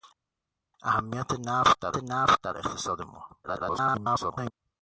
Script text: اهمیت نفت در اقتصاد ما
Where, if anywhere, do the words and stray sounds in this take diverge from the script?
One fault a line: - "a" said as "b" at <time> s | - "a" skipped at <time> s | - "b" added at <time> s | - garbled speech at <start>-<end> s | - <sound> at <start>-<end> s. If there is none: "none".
- "نفت در" added at 2.0 s
- garbled speech at 3.4-4.5 s